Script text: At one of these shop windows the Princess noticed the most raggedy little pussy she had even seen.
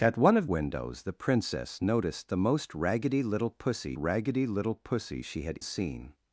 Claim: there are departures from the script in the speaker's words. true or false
true